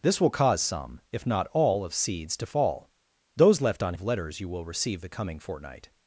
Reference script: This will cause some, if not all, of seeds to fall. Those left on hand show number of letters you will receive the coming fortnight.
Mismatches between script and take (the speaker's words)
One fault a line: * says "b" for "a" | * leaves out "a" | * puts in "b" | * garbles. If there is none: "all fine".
* leaves out "hand show number"